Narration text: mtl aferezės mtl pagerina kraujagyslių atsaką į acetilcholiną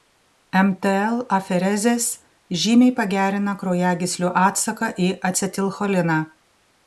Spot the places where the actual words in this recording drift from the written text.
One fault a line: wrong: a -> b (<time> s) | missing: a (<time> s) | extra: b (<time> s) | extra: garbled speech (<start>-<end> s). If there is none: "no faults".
wrong: mtl -> žymiai (2.6 s)